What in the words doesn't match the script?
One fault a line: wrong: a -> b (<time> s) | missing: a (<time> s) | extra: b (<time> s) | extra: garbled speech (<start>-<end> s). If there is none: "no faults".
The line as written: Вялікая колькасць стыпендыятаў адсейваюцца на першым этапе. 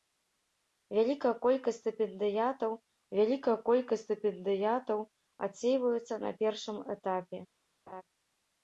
extra: вялікая колькасць стыпендыятаў (3.2 s)